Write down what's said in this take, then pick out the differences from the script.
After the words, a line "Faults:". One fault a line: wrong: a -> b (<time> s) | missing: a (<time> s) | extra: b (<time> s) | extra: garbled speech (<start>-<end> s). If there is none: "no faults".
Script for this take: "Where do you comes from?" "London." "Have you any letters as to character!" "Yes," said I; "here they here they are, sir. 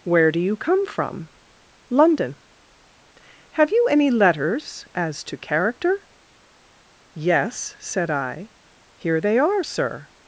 "Where do you come from?" "London." "Have you any letters as to character!" "Yes," said I; "here they are, sir.
Faults:
wrong: comes -> come (0.6 s)
missing: here they (9.4 s)